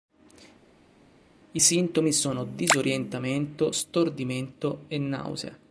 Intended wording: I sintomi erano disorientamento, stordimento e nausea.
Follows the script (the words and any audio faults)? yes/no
no